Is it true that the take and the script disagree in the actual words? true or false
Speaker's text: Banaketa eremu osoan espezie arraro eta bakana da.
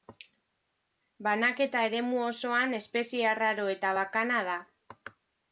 false